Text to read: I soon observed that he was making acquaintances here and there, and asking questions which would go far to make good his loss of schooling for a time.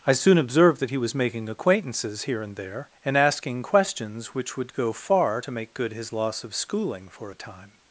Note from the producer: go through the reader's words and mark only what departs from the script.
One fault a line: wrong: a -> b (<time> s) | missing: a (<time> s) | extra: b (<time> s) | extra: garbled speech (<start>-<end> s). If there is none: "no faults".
no faults